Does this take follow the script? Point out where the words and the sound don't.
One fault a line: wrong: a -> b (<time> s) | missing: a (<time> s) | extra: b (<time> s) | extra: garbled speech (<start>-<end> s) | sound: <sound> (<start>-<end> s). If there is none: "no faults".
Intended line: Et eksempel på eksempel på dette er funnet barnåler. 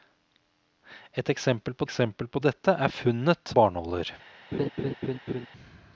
sound: laugh (4.5-5.5 s)